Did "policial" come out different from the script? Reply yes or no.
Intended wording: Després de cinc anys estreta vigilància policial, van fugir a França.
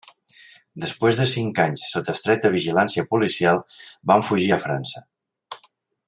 no